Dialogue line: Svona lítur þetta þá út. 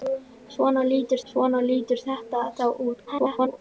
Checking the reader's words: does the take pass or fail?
fail